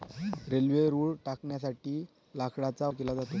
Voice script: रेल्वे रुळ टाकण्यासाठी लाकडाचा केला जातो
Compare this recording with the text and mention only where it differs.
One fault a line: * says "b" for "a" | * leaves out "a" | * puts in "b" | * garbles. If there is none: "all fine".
all fine